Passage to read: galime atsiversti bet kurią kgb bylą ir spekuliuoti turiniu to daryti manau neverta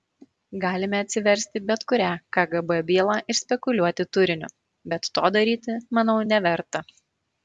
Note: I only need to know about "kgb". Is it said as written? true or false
true